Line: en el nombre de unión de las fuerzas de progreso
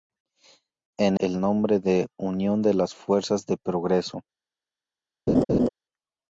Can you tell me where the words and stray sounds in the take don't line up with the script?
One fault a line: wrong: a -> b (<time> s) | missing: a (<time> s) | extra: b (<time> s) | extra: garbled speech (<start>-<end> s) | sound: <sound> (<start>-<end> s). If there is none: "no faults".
sound: laugh (5.3-5.7 s)